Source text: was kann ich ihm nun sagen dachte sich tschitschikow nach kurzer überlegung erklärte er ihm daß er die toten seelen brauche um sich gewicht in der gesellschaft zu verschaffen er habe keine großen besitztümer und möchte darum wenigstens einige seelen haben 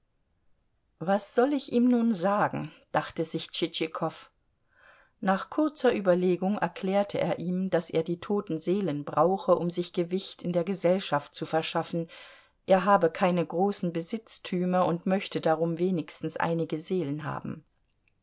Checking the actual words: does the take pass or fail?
fail